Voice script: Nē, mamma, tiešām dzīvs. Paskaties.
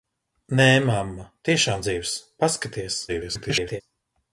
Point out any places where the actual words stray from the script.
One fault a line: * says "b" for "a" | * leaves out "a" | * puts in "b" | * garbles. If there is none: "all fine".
* garbles